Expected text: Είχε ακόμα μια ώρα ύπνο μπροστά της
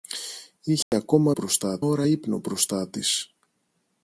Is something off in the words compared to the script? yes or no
yes